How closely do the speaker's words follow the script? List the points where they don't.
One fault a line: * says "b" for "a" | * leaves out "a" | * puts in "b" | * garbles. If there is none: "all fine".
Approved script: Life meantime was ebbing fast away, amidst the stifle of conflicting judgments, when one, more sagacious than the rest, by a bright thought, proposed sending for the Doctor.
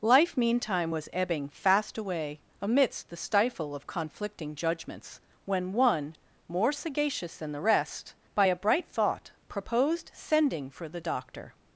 all fine